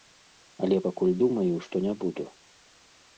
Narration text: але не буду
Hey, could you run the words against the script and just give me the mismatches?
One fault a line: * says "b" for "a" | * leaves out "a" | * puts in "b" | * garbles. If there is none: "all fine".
* puts in "пакуль думаю што"